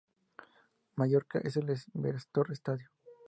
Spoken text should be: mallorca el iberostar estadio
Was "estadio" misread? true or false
false